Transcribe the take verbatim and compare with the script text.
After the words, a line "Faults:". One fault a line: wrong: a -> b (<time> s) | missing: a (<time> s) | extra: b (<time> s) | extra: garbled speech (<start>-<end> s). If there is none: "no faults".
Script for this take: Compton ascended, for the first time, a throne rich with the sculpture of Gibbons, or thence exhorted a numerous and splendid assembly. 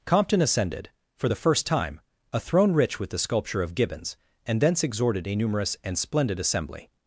Compton ascended, for the first time, a throne rich with the sculpture of Gibbons, and thence exhorted a numerous and splendid assembly.
Faults:
wrong: or -> and (4.5 s)